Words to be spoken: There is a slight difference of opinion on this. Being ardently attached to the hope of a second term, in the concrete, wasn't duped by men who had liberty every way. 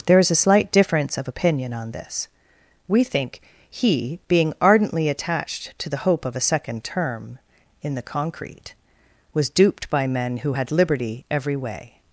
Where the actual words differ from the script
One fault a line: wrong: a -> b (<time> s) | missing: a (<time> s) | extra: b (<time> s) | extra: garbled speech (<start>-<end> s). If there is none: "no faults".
extra: We think he (2.9 s)
wrong: wasn't -> was (9.3 s)